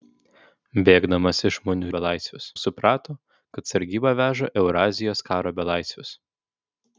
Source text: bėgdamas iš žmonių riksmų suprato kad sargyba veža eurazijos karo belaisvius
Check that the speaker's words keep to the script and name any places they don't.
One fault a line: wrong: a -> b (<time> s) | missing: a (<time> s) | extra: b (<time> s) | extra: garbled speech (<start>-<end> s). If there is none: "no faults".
wrong: riksmų -> belaisvius (2.0 s)